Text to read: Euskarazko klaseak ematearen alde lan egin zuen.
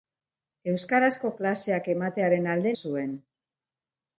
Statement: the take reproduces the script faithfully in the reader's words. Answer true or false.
false